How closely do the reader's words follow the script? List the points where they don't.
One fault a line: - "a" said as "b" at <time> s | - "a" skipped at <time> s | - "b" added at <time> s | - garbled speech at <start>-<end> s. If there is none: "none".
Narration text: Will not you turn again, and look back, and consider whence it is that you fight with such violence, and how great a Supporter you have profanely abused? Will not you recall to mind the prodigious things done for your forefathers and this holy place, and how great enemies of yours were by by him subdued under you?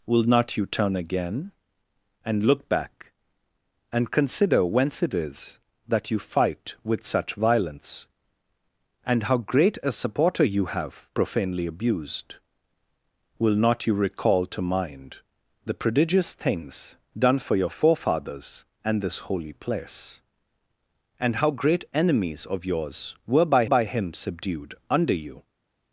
none